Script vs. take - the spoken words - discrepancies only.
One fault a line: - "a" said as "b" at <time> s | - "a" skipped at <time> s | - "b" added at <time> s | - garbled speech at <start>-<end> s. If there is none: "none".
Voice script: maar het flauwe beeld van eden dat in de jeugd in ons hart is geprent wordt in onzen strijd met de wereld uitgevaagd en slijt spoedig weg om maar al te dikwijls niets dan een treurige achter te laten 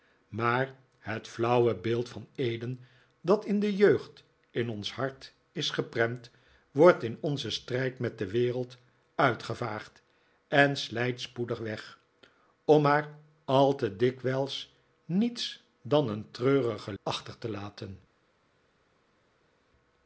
none